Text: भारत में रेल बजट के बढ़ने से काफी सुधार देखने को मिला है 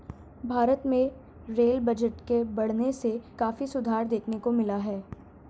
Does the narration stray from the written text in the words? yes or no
no